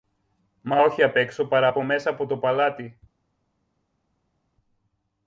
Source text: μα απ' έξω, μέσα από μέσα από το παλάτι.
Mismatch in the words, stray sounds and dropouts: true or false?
true